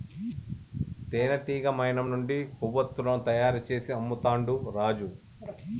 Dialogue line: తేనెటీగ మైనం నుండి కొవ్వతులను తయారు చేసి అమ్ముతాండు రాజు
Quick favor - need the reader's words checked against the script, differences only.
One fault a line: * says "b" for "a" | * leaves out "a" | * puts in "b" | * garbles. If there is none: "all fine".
all fine